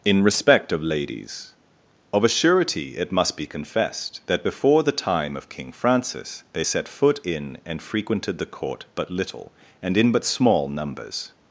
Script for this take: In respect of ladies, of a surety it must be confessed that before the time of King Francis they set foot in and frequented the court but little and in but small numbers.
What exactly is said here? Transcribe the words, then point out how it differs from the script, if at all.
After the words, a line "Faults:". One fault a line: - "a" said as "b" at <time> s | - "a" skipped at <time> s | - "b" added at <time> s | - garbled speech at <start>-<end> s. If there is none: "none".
In respect of ladies, of a surety it must be confessed that before the time of King Francis they set foot in and frequented the court but little and in but small numbers.
Faults:
none